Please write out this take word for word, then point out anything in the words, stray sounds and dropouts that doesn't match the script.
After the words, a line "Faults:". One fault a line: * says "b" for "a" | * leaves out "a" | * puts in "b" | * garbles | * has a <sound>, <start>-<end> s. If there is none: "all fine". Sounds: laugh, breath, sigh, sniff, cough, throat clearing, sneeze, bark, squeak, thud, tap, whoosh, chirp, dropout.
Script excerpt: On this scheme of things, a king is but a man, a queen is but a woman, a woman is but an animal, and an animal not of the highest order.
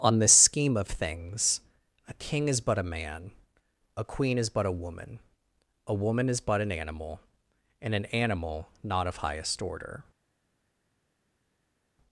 On this scheme of things, a king is but a man, a queen is but a woman, a woman is but an animal, and an animal not of highest order.
Faults:
* leaves out "the"